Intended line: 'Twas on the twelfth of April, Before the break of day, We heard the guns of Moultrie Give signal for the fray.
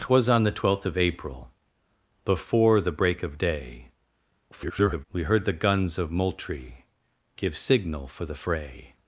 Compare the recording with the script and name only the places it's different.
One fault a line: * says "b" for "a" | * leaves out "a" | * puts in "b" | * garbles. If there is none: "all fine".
* garbles